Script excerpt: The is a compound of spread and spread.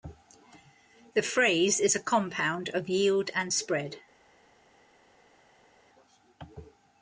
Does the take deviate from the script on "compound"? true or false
false